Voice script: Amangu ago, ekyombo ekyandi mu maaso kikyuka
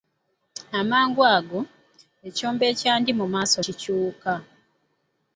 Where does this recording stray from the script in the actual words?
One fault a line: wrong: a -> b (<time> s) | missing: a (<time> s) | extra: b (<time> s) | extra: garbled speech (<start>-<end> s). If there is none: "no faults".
no faults